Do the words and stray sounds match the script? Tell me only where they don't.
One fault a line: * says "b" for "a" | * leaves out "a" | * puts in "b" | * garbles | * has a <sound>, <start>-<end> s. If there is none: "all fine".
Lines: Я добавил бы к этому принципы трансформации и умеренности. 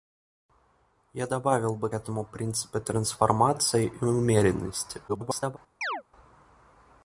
* leaves out "к"
* garbles
* has a chirp, 5.8-6.0 s